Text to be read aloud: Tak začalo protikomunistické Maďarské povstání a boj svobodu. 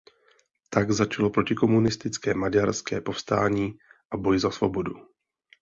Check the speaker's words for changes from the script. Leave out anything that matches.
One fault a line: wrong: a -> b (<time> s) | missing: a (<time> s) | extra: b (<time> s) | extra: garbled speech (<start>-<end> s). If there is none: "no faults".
extra: za (4.4 s)